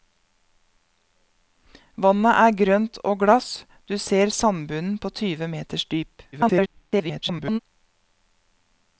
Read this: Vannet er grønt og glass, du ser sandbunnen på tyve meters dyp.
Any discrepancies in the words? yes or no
yes